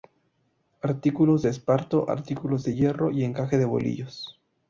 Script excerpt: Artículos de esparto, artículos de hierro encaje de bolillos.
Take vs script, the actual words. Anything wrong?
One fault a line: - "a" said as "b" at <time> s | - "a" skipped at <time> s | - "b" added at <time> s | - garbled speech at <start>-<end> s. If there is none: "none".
- "y" added at 3.1 s